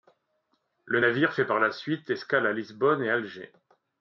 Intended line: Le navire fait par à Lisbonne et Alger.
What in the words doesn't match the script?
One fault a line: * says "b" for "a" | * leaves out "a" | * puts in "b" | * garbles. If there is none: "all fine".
* puts in "la suite escale"